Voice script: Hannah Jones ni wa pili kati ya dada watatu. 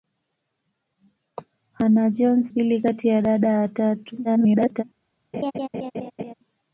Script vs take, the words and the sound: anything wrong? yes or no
yes